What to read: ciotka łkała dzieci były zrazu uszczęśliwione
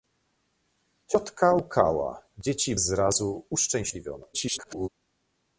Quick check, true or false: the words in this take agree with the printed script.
false